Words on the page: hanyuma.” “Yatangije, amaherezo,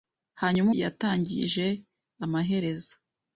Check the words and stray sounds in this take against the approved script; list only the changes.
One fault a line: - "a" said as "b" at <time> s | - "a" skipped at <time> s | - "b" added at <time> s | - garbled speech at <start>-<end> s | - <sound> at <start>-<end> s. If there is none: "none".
none